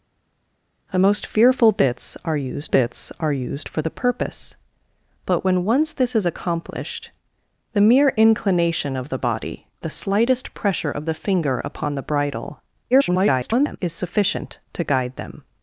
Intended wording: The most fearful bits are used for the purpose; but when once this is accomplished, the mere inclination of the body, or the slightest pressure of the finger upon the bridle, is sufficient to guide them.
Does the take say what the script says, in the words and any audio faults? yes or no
no